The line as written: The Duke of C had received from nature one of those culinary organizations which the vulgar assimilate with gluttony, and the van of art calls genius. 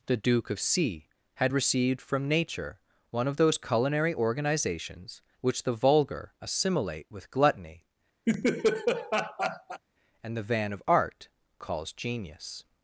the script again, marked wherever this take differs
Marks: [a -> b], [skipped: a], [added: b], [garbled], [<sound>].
The Duke of C had received from nature one of those culinary organizations which the vulgar assimilate with gluttony, [laugh] and the van of art calls genius.